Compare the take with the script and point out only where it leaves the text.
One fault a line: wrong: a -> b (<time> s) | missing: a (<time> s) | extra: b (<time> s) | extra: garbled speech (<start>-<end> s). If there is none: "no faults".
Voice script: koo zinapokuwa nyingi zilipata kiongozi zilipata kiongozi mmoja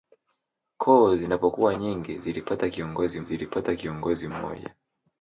no faults